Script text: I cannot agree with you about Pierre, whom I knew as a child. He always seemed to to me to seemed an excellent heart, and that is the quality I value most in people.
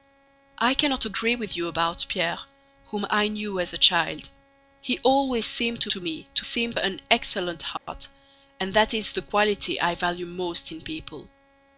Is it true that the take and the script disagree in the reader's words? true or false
false